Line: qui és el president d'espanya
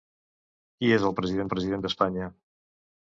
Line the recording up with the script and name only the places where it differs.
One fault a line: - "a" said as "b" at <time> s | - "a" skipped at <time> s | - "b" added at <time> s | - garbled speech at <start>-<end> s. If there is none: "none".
- "president" added at 1.5 s